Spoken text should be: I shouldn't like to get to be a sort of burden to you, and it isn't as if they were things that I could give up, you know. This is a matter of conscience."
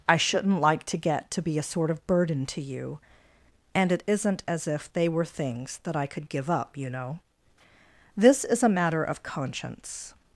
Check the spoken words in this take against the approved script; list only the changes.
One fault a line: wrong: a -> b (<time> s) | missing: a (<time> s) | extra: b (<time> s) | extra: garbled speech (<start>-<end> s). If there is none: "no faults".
no faults